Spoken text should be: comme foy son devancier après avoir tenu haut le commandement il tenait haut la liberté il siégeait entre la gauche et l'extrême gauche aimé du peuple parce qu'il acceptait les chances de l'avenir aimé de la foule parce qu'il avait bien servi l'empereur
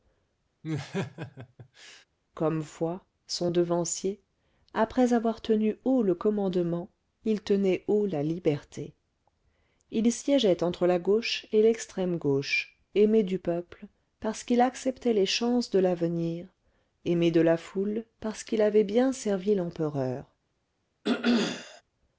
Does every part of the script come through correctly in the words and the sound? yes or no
no